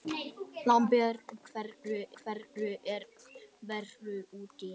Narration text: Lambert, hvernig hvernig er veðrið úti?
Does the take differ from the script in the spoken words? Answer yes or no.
no